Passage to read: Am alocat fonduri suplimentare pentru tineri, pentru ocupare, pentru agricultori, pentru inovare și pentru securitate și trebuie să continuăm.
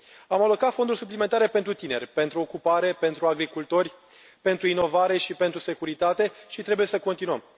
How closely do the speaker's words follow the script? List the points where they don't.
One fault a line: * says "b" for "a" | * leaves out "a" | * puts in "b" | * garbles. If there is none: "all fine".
all fine